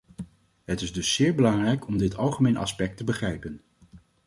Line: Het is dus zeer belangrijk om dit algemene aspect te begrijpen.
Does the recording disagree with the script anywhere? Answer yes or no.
no